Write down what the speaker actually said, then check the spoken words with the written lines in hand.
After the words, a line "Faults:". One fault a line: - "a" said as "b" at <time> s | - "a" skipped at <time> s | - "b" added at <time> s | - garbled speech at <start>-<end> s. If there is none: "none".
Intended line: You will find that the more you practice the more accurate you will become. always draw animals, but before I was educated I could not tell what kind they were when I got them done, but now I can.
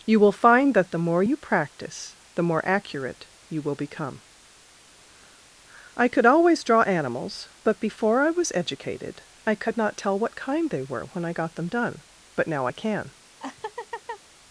You will find that the more you practice the more accurate you will become. I could always draw animals, but before I was educated I could not tell what kind they were when I got them done, but now I can.
Faults:
- "I could" added at 5.9 s